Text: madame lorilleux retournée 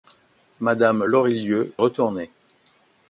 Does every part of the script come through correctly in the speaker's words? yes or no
yes